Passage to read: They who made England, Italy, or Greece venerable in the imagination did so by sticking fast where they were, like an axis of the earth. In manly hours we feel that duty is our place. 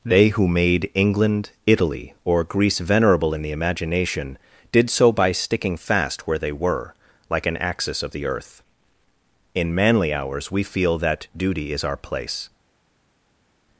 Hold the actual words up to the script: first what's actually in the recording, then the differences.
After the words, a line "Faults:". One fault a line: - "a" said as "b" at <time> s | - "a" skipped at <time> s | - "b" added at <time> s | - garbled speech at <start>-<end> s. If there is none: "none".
They who made England, Italy, or Greece venerable in the imagination did so by sticking fast where they were, like an axis of the earth. In manly hours we feel that duty is our place.
Faults:
none